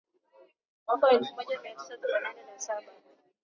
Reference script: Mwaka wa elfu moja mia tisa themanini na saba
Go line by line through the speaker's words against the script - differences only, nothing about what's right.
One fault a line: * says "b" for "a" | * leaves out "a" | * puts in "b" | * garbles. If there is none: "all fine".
all fine